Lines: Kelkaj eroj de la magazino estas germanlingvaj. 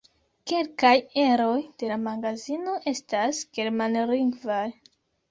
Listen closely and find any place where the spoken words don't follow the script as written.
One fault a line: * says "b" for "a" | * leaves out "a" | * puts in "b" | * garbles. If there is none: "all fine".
all fine